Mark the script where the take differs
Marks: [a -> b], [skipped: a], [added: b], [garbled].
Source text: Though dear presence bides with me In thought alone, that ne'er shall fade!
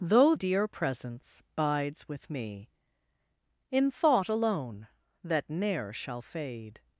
Though dear presence bides with me In thought alone, that ne'er shall fade!